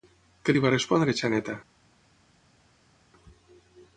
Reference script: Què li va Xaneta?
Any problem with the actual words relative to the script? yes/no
yes